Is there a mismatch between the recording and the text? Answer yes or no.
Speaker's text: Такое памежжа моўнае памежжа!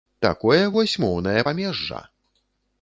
yes